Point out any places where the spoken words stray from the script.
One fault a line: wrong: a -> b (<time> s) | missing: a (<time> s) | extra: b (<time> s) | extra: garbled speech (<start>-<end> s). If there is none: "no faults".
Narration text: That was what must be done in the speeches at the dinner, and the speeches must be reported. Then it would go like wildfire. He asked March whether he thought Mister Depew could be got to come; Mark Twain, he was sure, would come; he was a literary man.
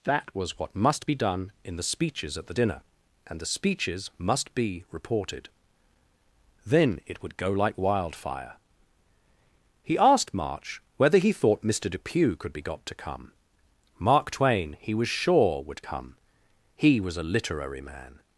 no faults